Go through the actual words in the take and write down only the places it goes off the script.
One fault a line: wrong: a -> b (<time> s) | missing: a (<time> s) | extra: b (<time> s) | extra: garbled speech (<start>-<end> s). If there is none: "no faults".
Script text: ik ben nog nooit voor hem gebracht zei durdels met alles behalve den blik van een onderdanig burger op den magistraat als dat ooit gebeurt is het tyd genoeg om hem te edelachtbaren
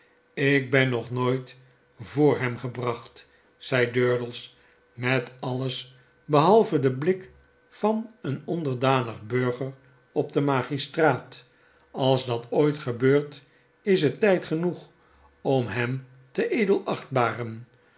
no faults